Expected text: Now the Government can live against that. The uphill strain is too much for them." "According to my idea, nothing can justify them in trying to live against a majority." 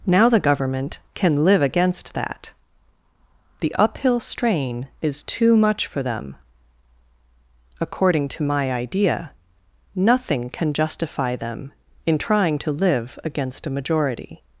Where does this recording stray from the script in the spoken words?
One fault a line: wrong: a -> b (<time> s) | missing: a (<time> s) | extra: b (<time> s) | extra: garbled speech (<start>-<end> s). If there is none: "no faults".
no faults